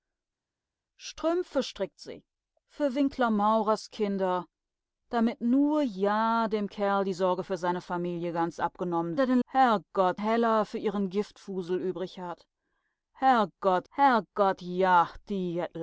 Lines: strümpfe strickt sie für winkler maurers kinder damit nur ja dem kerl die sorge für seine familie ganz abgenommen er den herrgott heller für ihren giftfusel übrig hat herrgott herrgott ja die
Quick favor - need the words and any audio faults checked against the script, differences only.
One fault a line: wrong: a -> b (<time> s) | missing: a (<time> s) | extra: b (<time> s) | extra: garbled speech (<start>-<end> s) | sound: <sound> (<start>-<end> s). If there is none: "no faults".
no faults